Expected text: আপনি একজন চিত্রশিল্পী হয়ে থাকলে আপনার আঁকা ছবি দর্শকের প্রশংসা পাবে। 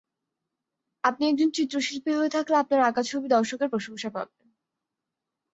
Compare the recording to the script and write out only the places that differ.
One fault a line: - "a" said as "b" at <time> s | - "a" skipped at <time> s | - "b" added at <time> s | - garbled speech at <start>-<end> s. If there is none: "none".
none